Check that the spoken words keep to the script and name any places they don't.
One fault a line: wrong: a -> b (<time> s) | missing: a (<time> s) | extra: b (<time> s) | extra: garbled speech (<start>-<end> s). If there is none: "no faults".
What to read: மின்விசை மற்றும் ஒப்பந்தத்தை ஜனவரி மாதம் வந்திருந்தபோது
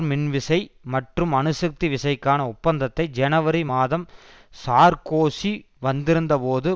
extra: அணுசக்தி விசைக்கான (1.3 s)
extra: சார்க்கோசி (4.5 s)